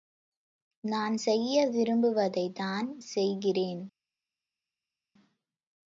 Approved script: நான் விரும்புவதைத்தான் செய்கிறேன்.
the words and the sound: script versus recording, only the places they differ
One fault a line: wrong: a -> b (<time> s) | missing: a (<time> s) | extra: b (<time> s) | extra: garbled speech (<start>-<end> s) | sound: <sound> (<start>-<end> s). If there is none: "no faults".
extra: செய்ய (1.1 s)